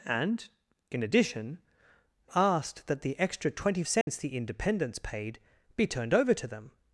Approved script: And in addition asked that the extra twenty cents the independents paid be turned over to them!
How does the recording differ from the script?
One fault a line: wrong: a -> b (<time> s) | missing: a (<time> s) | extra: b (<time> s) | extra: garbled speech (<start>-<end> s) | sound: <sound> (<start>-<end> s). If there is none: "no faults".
sound: dropout (4.0-4.1 s)